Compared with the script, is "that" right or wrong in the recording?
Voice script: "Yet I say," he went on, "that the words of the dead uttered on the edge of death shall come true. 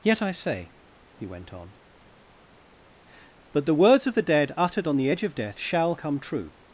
wrong